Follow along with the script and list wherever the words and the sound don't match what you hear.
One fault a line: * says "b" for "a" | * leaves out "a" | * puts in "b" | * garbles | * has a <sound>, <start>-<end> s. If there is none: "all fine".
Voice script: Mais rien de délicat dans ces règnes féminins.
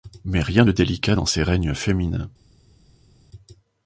all fine